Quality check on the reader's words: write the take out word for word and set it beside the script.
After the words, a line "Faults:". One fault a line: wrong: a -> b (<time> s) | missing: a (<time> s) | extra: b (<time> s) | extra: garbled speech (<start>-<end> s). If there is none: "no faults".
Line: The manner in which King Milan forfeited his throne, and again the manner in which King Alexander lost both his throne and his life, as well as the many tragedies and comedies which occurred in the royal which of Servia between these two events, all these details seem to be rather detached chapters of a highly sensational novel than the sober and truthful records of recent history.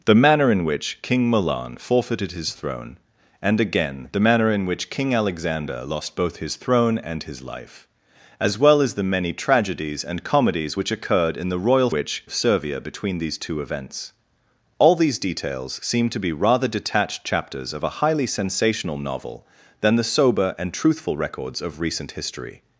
The manner in which King Milan forfeited his throne, and again the manner in which King Alexander lost both his throne and his life, as well as the many tragedies and comedies which occurred in the royal which of Servia between these two events, all these details seem to be rather detached chapters of a highly sensational novel than the sober and truthful records of recent history.
Faults:
no faults